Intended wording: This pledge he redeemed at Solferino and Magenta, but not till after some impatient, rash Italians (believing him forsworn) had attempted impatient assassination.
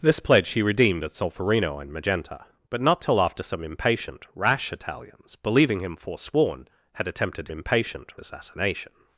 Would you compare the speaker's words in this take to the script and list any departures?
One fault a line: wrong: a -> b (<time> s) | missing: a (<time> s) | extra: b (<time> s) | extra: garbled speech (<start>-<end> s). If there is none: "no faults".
no faults